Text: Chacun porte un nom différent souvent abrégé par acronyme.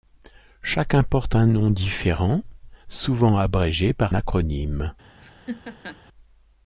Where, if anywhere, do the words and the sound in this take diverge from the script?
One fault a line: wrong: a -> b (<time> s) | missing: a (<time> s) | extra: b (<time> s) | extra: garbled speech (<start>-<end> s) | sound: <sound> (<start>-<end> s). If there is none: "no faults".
sound: laugh (5.2-6.0 s)